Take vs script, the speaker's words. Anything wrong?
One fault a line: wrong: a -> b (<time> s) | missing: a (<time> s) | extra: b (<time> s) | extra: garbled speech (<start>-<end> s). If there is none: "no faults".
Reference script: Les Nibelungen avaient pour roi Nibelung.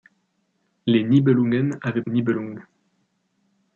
missing: pour roi (2.0 s)